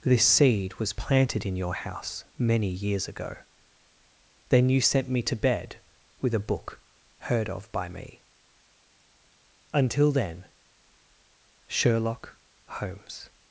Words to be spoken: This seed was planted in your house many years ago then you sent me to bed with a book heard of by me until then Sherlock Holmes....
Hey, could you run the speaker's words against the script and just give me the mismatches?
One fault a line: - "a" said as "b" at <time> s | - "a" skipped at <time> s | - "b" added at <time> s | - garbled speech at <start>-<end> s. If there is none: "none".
none